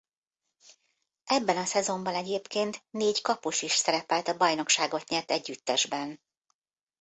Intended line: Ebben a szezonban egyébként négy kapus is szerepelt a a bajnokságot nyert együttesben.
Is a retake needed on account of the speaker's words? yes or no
yes